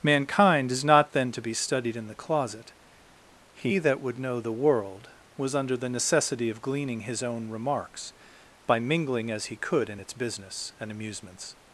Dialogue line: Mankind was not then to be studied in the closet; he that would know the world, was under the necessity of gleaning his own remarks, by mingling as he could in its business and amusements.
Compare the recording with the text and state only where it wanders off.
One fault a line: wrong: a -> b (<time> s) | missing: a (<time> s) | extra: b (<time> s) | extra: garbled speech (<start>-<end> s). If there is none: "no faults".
wrong: was -> is (0.7 s)